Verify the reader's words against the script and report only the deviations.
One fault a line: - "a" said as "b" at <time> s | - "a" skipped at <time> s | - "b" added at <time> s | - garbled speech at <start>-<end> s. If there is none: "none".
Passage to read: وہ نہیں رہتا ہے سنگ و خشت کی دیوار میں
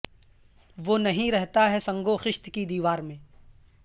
none